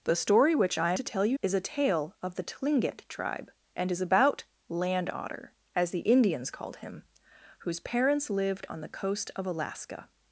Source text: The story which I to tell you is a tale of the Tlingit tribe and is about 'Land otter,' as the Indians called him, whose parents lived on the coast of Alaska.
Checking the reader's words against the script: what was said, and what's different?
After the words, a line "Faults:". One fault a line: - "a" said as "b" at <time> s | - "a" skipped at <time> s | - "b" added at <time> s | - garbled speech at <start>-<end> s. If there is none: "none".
The story which I to tell you is a tale of the Tlingit tribe and is about 'Land otter,' as the Indians called him, whose parents lived on the coast of Alaska.
Faults:
none